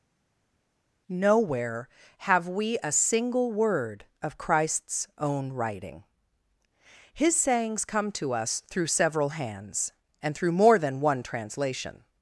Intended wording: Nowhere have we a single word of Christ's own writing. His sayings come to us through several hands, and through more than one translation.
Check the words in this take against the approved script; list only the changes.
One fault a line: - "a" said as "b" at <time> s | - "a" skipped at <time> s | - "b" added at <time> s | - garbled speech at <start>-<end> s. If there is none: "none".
none